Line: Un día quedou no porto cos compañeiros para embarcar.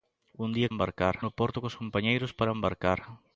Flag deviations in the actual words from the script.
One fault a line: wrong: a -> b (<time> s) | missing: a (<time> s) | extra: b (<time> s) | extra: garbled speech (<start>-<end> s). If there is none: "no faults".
wrong: quedou -> embarcar (0.7 s)